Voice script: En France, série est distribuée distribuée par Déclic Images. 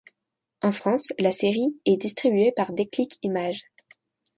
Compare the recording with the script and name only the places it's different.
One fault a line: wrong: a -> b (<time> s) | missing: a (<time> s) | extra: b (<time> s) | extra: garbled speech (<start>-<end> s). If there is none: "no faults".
extra: la (1.2 s)
missing: distribuée (2.5 s)